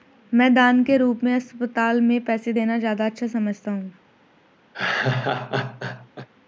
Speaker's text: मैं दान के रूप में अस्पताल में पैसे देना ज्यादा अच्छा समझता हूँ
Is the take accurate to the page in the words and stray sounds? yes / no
no